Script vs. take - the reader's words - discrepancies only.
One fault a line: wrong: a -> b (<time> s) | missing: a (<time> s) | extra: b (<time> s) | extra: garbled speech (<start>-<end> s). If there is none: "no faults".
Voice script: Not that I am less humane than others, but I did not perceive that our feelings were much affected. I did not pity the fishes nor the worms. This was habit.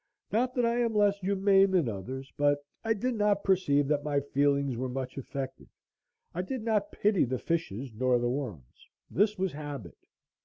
wrong: our -> my (4.0 s)